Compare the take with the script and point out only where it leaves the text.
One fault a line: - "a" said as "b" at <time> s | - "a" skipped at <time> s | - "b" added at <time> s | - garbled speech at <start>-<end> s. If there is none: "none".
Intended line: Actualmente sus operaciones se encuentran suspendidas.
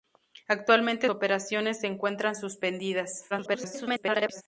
- "sus" skipped at 1.1 s
- garbled speech at 3.3-4.4 s